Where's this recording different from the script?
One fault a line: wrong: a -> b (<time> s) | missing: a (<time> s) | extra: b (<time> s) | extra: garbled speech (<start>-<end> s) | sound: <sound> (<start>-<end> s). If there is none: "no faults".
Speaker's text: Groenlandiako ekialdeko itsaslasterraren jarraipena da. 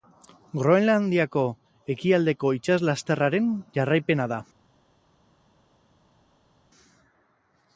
no faults